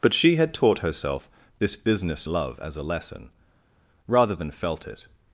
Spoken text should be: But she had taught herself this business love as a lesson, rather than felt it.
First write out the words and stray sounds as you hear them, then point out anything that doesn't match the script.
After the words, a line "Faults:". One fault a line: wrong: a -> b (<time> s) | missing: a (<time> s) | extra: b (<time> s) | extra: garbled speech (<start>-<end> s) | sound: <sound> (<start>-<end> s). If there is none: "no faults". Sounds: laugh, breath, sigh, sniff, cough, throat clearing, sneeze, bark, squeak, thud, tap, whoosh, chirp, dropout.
But she had taught herself this business love as a lesson, rather than felt it.
Faults:
no faults